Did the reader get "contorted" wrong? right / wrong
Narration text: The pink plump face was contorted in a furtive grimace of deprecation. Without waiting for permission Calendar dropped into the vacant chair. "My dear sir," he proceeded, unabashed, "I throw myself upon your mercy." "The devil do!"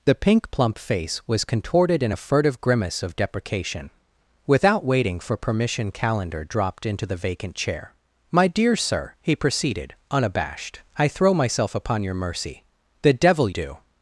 right